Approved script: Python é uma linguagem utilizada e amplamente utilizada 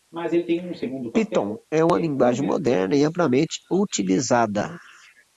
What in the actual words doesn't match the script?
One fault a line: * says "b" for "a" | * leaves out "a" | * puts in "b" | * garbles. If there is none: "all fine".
* says "moderna" for "utilizada"